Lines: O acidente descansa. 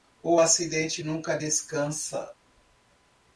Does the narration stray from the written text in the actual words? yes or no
yes